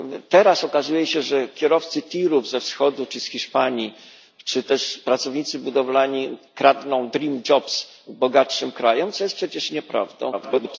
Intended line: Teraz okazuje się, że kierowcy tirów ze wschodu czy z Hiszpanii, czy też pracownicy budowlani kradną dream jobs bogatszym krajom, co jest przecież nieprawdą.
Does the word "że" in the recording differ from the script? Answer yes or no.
no